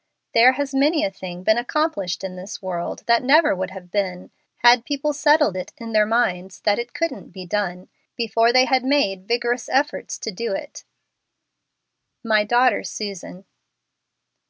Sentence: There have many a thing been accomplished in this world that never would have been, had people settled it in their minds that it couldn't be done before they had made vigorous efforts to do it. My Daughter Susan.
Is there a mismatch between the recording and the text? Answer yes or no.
yes